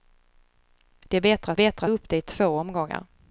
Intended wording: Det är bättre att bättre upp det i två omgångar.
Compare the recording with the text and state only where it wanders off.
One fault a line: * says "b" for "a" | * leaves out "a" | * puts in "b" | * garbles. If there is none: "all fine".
all fine